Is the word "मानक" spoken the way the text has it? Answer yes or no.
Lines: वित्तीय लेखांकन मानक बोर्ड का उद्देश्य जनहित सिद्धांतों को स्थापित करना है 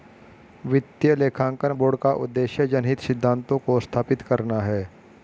no